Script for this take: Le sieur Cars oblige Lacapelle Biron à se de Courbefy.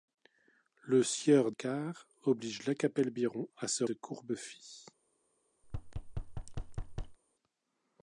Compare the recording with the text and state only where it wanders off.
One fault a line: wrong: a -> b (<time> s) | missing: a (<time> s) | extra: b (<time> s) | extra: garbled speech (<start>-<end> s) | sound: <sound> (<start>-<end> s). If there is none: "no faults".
sound: thud (5.6-7.2 s)